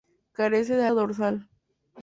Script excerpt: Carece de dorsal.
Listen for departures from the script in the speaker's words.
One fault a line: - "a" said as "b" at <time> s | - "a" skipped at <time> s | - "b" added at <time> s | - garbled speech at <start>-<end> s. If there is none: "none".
none